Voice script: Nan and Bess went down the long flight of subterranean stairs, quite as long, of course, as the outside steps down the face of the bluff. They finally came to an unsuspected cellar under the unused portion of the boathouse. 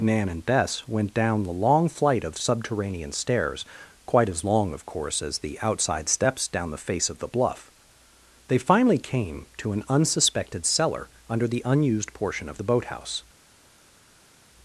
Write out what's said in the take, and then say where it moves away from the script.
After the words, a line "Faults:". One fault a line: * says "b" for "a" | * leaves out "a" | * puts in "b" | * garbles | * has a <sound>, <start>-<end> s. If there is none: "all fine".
Nan and Bess went down the long flight of subterranean stairs, quite as long, of course, as the outside steps down the face of the bluff. They finally came to an unsuspected cellar under the unused portion of the boathouse.
Faults:
all fine